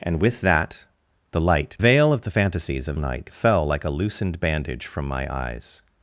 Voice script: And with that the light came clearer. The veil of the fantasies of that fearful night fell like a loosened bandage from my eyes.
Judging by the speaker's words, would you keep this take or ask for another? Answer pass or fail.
fail